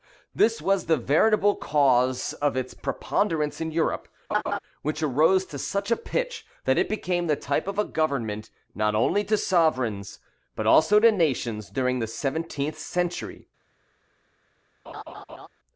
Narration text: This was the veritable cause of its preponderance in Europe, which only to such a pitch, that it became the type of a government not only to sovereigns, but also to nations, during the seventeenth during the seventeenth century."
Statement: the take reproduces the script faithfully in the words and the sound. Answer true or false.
false